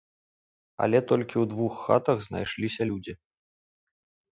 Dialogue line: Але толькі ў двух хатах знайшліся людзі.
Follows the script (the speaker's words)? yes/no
yes